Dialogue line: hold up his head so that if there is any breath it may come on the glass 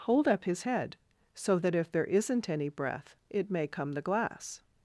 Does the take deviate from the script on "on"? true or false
true